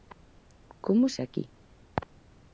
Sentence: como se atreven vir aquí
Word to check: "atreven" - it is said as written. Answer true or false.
false